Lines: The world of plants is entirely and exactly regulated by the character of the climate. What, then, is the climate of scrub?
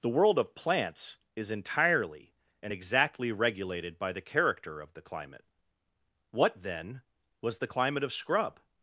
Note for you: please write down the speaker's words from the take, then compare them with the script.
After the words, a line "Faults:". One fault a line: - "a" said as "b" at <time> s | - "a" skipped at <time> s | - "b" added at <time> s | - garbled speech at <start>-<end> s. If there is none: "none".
The world of plants is entirely and exactly regulated by the character of the climate. What, then, was the climate of scrub?
Faults:
- "is" said as "was" at 7.4 s